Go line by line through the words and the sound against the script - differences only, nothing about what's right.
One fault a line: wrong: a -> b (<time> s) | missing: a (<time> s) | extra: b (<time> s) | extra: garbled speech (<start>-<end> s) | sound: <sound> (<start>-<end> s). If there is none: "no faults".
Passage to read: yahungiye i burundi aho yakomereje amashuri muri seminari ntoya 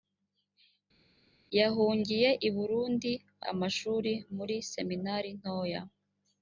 missing: aho yakomereje (3.1 s)